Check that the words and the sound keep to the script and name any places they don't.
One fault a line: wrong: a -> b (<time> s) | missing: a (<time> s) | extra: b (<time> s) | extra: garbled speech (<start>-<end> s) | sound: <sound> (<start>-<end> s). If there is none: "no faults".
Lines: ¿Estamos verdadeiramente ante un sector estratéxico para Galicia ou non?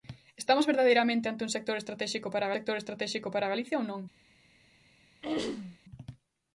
extra: sector estratéxico para (2.5 s)
sound: throat clearing (5.2-5.8 s)